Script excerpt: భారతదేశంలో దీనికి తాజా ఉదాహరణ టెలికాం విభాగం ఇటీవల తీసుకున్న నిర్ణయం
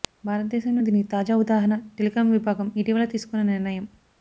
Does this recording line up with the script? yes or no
yes